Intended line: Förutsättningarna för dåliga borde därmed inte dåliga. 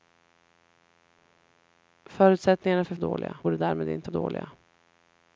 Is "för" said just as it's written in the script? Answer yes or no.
yes